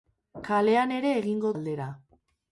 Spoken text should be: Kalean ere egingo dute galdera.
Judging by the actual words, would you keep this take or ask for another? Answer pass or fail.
fail